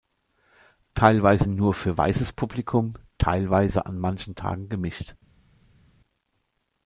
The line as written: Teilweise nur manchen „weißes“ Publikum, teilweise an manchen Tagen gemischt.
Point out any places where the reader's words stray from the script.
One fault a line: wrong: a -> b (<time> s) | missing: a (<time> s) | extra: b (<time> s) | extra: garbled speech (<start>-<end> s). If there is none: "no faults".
wrong: manchen -> für (1.7 s)